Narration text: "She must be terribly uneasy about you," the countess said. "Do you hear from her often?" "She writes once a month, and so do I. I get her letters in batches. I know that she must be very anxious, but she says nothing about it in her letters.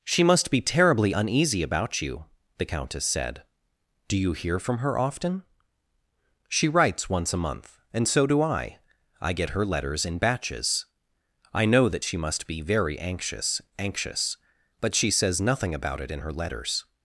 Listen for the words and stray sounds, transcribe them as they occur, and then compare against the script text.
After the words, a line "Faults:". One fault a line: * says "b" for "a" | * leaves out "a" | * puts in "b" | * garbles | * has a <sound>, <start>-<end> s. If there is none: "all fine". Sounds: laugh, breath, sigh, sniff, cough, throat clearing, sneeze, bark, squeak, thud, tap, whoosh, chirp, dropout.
"She must be terribly uneasy about you," the countess said. "Do you hear from her often?" "She writes once a month, and so do I. I get her letters in batches. I know that she must be very anxious anxious, but she says nothing about it in her letters.
Faults:
* puts in "anxious"